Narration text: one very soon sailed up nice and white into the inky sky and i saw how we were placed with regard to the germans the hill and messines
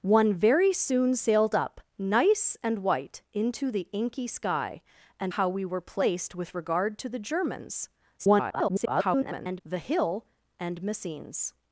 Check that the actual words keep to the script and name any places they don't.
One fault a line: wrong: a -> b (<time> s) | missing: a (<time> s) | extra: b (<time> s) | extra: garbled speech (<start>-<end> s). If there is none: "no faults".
missing: i saw (5.3 s)
extra: garbled speech (8.2-9.6 s)